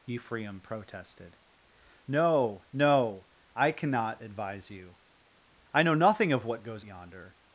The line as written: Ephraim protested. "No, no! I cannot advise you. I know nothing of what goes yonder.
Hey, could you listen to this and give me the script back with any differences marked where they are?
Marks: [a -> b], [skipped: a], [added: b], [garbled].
Ephraim protested. "No, no! I cannot advise you. I know nothing of what goes yonder.